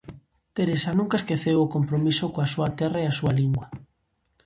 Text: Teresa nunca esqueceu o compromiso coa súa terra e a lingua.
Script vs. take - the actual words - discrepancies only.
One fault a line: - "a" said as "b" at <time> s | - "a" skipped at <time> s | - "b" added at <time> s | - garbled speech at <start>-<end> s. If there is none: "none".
- "súa" added at 3.2 s